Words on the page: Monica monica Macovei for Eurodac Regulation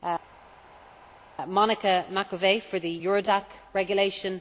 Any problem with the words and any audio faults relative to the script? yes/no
yes